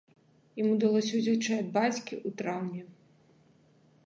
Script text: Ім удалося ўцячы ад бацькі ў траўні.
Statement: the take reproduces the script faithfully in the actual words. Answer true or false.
true